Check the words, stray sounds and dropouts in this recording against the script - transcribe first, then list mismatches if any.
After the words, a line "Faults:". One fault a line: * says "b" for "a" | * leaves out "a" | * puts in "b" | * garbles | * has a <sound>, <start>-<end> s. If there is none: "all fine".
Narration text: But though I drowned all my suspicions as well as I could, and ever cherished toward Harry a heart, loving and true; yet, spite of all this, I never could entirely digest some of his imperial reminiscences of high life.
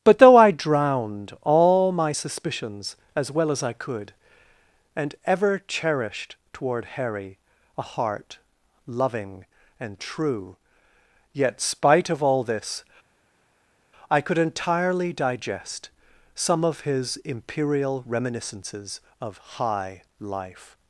But though I drowned all my suspicions as well as I could, and ever cherished toward Harry a heart, loving and true; yet, spite of all this, I could entirely digest some of his imperial reminiscences of high life.
Faults:
* leaves out "never"